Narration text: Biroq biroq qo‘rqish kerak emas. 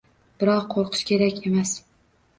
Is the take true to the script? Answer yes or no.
no